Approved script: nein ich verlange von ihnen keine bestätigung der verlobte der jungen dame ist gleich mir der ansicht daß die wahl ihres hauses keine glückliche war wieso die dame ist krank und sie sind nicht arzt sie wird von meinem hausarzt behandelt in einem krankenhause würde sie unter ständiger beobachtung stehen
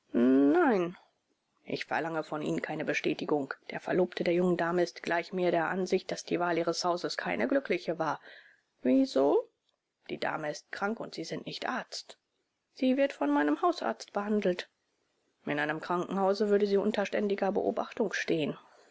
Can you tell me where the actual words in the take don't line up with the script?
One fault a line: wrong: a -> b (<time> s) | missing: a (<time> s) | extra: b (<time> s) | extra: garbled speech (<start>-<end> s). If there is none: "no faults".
no faults